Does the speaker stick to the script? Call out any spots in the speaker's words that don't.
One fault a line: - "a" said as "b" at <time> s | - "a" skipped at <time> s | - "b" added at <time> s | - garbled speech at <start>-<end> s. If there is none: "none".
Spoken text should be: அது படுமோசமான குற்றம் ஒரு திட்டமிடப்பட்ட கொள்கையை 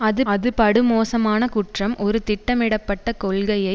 - "அது" added at 0.3 s